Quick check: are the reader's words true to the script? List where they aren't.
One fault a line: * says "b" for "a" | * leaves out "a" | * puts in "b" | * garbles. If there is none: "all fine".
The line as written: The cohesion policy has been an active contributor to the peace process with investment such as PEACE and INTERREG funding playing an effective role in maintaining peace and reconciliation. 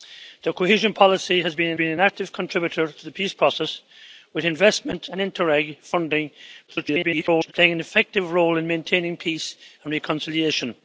* puts in "been an"
* leaves out "such as PEACE"
* garbles